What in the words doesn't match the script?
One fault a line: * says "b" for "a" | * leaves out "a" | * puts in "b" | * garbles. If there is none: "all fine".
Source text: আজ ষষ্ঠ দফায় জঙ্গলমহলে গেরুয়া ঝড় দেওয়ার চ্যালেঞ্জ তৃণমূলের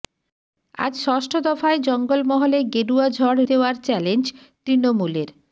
all fine